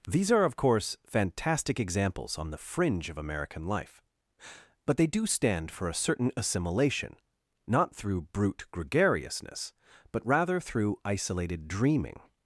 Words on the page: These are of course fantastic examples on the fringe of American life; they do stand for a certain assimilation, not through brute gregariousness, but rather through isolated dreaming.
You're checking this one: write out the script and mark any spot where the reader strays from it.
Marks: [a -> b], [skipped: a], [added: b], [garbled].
These are of course fantastic examples on the fringe of American life; [added: but] they do stand for a certain assimilation, not through brute gregariousness, but rather through isolated dreaming.